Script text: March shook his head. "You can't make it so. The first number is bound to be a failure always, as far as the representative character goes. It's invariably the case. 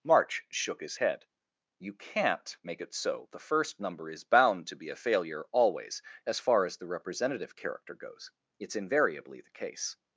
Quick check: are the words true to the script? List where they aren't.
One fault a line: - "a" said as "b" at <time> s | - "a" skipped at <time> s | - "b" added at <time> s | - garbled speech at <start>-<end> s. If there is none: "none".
none